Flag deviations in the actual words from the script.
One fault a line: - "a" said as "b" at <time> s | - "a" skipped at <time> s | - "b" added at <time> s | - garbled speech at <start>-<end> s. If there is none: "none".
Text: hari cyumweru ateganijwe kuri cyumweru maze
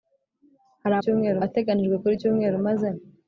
none